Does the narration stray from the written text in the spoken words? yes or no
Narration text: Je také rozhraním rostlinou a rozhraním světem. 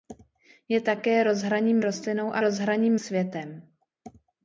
no